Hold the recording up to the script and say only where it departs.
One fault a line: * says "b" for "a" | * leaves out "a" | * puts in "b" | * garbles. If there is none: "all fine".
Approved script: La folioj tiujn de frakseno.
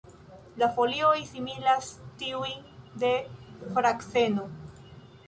* puts in "similas"